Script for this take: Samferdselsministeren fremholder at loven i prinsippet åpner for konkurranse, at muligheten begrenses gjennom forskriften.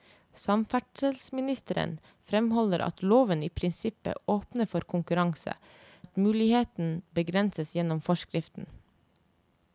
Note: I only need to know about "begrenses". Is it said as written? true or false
true